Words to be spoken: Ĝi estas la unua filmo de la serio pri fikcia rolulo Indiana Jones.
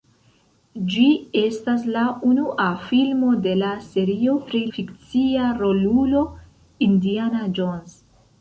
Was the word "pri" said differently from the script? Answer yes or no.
no